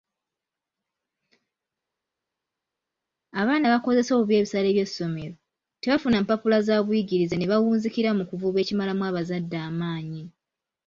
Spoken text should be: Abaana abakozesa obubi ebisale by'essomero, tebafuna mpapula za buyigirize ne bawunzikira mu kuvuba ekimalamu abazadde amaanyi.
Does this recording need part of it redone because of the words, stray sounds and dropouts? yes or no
no